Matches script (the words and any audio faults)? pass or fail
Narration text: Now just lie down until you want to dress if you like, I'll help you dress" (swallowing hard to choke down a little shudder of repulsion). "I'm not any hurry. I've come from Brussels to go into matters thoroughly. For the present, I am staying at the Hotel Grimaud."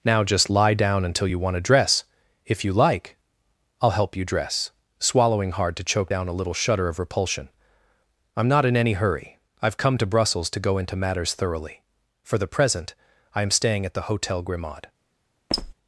fail